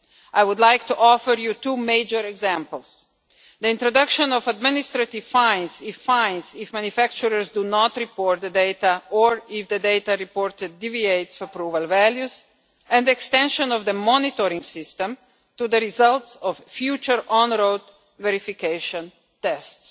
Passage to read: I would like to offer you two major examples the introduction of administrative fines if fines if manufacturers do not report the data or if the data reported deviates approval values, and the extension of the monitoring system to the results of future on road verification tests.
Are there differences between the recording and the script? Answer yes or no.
no